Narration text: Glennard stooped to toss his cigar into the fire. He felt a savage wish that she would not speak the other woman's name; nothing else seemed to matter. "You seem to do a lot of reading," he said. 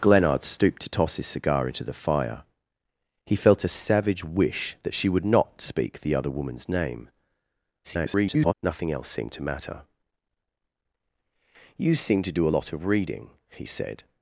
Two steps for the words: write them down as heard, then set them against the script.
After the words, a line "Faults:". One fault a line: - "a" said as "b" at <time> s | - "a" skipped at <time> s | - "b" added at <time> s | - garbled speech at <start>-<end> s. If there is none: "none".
Glennard stooped to toss his cigar into the fire. He felt a savage wish that she would not speak the other woman's name; [garbled] nothing else seemed to matter. "You seem to do a lot of reading," he said.
Faults:
- garbled speech at 7.8-8.5 s